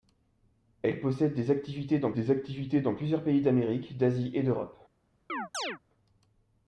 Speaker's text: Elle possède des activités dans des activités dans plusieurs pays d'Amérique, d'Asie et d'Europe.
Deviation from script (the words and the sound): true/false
true